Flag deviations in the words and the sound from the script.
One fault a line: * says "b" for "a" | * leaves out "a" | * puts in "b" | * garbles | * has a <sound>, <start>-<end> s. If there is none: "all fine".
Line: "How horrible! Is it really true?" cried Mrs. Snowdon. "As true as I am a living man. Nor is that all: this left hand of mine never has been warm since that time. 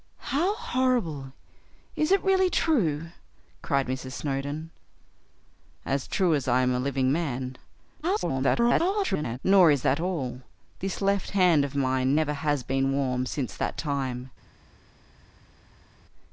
* garbles